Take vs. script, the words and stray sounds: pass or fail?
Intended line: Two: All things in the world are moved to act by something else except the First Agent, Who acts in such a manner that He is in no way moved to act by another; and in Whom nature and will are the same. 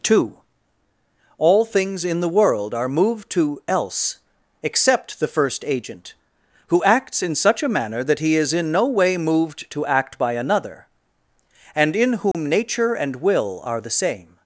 fail